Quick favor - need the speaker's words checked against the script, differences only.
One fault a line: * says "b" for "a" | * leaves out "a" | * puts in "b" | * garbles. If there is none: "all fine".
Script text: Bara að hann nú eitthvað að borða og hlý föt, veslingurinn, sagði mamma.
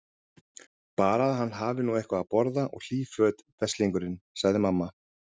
* puts in "hafi"